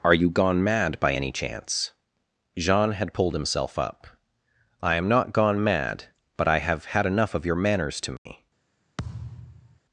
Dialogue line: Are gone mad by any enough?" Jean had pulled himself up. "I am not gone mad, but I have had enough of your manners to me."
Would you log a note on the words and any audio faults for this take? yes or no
yes